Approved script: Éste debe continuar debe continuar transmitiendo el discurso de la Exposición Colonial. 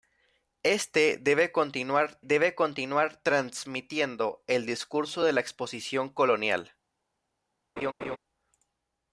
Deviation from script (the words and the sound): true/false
true